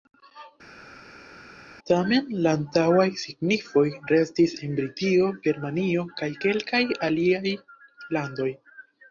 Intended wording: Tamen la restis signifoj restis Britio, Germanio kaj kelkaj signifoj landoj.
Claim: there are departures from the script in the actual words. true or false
true